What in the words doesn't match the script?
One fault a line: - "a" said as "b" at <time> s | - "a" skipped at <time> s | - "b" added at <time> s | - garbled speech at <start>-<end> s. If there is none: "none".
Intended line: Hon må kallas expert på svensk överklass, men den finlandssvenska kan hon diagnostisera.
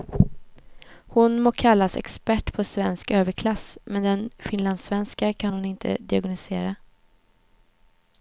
- "inte" added at 5.6 s